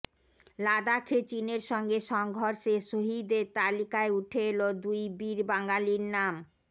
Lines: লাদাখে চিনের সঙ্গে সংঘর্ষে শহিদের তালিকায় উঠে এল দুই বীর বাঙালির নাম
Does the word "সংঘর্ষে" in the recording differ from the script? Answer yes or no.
no